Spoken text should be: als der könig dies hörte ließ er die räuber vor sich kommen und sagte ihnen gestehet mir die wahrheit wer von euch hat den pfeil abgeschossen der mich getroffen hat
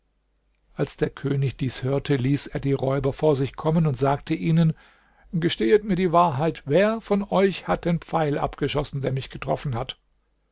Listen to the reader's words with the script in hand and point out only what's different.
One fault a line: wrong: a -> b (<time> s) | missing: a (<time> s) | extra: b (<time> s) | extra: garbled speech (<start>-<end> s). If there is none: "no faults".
no faults